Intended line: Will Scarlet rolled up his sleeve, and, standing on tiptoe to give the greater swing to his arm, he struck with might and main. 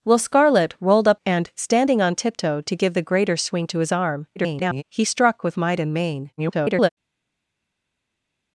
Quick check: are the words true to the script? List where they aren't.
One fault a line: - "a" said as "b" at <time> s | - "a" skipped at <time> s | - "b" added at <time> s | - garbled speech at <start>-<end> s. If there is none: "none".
- "his sleeve" skipped at 1.2 s
- garbled speech at 4.4-4.8 s
- garbled speech at 6.4-6.9 s